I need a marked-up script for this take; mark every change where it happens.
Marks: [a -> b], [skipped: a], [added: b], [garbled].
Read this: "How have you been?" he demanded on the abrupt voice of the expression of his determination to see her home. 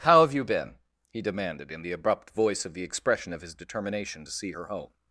"How have you been?" he demanded [on -> in] the abrupt voice of the expression of his determination to see her home.